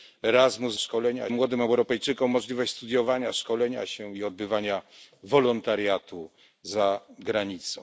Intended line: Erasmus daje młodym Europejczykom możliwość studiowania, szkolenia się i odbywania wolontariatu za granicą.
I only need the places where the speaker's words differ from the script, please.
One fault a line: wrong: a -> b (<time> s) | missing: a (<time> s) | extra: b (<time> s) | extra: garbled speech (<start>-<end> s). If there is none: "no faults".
wrong: daje -> szkolenia (0.8 s)